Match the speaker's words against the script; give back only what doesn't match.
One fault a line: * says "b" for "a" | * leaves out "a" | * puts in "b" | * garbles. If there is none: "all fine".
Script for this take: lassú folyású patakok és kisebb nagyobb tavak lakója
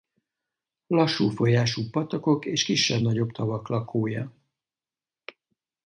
all fine